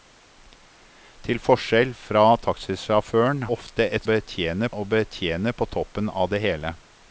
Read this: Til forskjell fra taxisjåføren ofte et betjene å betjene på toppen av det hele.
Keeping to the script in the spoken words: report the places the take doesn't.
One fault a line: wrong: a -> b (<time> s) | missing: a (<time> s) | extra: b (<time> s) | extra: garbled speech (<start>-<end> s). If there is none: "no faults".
no faults